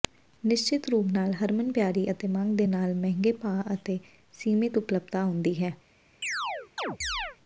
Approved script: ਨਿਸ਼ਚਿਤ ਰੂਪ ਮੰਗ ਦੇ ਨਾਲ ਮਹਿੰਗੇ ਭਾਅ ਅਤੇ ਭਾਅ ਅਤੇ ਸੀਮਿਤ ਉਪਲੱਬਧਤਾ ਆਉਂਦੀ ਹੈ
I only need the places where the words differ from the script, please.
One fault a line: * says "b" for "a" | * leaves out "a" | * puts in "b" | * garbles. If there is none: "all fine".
* puts in "ਨਾਲ ਹਰਮਨਪਿਆਰੀ ਅਤੇ"
* leaves out "ਭਾਅ ਅਤੇ"